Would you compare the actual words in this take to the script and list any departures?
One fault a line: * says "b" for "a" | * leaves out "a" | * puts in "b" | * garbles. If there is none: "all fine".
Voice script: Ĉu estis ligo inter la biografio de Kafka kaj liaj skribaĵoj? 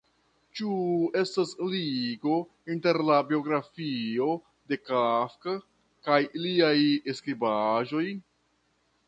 * says "estas" for "estis"